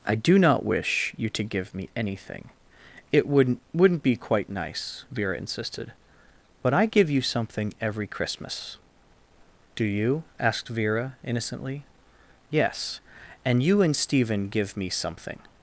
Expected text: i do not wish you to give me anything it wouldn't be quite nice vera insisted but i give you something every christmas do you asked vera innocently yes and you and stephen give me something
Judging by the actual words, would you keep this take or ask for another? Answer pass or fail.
fail